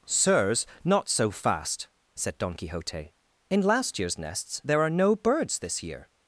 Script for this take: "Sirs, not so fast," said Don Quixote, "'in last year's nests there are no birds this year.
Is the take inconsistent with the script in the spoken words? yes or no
no